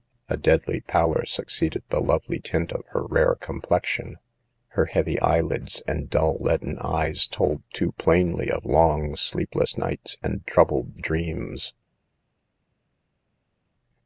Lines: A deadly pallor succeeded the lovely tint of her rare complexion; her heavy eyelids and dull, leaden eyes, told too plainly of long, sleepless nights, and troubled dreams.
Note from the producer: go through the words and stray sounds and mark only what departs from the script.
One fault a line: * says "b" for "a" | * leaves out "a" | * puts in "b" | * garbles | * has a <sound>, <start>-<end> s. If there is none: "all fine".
all fine